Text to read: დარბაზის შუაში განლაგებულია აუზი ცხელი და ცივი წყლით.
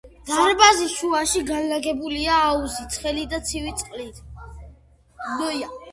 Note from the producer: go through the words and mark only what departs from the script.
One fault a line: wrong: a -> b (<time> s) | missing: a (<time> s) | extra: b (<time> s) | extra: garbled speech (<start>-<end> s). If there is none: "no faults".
no faults